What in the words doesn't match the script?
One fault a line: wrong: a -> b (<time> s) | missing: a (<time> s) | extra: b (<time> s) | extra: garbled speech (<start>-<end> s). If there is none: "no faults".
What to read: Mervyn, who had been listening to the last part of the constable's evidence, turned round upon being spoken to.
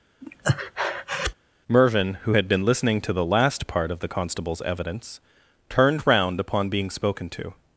no faults